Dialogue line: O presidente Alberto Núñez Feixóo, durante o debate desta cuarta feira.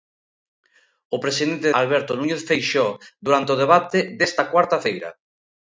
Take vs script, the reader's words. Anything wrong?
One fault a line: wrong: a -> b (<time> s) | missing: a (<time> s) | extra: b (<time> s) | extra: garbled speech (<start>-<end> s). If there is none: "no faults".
no faults